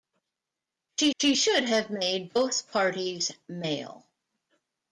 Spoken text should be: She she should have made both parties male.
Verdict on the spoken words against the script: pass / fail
pass